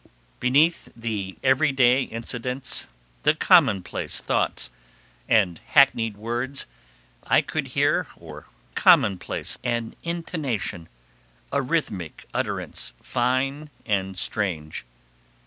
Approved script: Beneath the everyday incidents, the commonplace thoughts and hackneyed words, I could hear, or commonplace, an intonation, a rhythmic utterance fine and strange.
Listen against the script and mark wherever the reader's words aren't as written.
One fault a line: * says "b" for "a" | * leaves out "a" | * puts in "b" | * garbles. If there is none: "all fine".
all fine